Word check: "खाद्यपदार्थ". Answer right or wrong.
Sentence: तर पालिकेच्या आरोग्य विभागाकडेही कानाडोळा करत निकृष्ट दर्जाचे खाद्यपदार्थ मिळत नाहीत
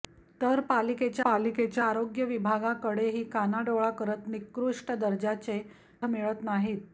wrong